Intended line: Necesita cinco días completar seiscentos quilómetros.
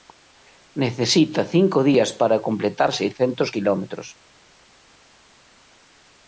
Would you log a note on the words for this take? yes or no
yes